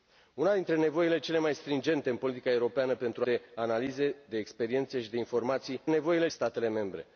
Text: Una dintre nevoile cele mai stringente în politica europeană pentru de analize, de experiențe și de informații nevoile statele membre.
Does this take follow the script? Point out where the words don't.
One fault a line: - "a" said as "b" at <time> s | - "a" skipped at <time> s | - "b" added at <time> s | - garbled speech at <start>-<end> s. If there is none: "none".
none